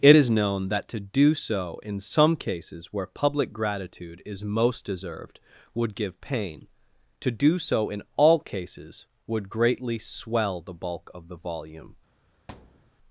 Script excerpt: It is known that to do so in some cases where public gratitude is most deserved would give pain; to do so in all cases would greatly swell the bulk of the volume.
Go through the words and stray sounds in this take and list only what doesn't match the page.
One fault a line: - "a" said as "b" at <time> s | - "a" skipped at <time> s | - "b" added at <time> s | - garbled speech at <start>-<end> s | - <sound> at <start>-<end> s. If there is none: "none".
- thud at 12.5-12.9 s